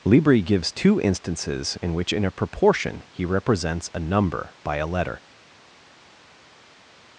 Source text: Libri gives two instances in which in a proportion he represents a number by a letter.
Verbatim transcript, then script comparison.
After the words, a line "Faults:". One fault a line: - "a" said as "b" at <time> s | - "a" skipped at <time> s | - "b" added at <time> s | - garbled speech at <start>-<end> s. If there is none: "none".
Libri gives two instances in which in a proportion he represents a number by a letter.
Faults:
none